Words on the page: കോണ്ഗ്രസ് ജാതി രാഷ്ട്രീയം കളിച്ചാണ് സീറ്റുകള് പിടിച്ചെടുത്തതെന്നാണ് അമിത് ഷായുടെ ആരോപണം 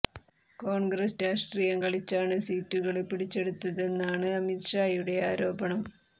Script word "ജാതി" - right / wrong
wrong